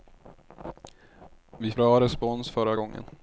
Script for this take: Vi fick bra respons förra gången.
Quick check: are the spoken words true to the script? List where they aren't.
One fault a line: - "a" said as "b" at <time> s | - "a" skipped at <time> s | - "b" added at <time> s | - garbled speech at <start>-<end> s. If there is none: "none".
- "fick" skipped at 1.7 s